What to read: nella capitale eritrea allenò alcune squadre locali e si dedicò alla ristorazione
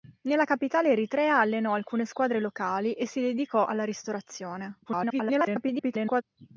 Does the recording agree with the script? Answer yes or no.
no